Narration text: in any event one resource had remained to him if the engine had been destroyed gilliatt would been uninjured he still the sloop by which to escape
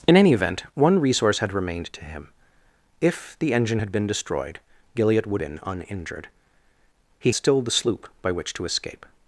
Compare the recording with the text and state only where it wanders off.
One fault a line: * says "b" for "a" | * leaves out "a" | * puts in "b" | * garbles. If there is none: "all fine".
all fine